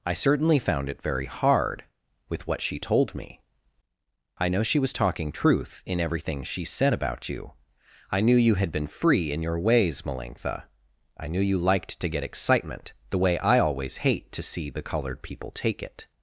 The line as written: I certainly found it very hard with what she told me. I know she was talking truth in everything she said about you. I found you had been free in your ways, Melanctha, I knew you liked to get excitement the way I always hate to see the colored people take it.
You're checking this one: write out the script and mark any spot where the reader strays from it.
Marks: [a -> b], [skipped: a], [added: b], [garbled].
I certainly found it very hard with what she told me. I know she was talking truth in everything she said about you. I [found -> knew] you had been free in your ways, Melanctha, I knew you liked to get excitement the way I always hate to see the colored people take it.